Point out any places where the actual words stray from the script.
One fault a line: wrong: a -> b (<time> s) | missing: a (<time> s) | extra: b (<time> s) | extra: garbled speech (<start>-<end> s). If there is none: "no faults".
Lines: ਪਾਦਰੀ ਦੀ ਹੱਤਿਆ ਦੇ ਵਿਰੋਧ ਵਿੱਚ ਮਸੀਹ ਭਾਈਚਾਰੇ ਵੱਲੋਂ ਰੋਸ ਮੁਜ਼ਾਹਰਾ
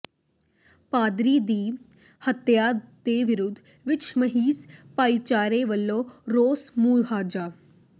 no faults